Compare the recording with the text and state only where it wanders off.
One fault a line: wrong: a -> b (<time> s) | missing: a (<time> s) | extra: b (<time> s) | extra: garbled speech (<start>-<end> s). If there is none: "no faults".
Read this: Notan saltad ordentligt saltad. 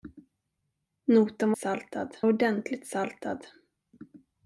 no faults